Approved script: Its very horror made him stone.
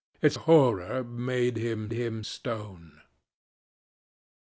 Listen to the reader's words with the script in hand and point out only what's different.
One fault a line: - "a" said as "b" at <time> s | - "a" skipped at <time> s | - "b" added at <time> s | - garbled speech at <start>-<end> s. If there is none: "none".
- "very" skipped at 0.4 s
- "him" added at 1.9 s